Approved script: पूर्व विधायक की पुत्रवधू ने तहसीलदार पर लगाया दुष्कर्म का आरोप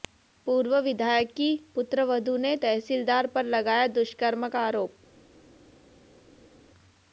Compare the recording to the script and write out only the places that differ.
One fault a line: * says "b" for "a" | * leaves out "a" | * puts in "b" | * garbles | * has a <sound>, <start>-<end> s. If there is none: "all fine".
all fine